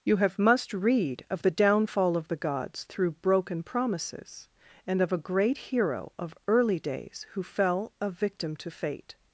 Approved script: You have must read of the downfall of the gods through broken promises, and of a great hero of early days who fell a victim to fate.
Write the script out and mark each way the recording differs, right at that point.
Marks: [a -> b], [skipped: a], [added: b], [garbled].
You have must read of the downfall of the gods through broken promises, and of a great hero of early days who fell a victim to fate.